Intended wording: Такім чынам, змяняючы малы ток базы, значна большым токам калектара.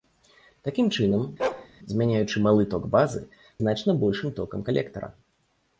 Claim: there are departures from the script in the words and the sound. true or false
true